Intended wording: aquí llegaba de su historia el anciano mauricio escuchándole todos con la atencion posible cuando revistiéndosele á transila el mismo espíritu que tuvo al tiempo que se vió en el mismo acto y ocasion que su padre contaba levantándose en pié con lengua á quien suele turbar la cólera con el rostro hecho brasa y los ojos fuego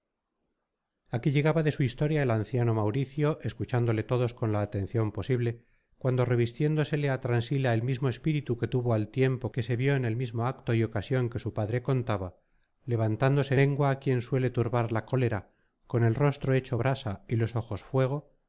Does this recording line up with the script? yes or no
no